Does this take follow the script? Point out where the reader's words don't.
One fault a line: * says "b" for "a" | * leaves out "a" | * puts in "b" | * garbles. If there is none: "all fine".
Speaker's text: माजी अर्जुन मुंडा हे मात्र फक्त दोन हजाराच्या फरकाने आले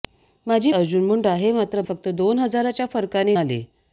all fine